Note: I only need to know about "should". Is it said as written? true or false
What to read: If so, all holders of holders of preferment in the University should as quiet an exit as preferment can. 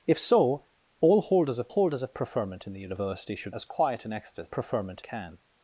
true